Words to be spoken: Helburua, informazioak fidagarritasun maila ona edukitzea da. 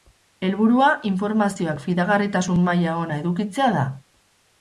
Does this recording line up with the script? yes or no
yes